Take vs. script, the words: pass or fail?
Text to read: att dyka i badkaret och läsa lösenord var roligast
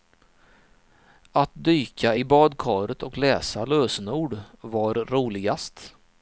pass